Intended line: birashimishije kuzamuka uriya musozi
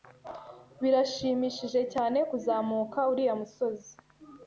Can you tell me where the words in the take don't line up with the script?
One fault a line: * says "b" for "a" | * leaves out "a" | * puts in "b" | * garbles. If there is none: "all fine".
* puts in "cyane"